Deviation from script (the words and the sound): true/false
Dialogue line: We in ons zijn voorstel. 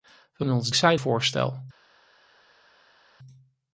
false